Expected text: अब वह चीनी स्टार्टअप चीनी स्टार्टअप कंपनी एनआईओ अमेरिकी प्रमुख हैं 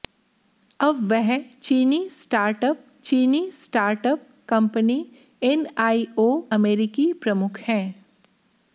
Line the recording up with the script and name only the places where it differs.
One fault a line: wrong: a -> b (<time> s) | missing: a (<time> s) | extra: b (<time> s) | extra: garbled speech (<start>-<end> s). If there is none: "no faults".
no faults